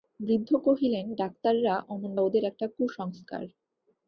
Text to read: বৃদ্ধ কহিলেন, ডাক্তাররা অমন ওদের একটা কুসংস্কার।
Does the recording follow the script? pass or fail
pass